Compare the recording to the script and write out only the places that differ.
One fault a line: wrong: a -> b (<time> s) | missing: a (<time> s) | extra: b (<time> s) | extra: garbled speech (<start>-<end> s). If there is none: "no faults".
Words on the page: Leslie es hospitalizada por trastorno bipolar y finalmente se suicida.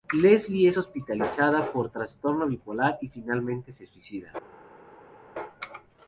no faults